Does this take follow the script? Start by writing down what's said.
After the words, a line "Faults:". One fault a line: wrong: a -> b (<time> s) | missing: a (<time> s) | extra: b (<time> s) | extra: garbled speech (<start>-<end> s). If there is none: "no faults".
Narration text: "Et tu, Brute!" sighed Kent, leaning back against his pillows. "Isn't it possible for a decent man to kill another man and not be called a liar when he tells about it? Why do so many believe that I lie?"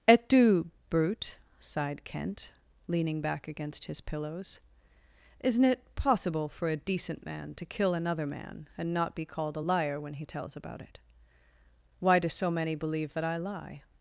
"Et tu, Brute!" sighed Kent, leaning back against his pillows. "Isn't it possible for a decent man to kill another man and not be called a liar when he tells about it? Why do so many believe that I lie?"
Faults:
no faults